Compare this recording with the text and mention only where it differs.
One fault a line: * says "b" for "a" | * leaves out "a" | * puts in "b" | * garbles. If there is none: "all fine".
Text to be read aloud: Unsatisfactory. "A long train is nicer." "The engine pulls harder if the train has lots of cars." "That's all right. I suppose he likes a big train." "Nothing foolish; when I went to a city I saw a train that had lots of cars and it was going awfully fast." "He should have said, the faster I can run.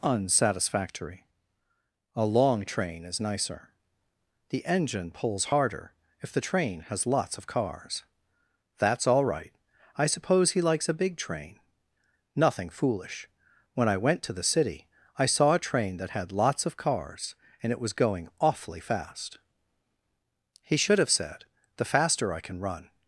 * says "the" for "a"